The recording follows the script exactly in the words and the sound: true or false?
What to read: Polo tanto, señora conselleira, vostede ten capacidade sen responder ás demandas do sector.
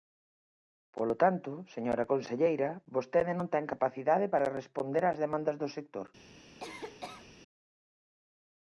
false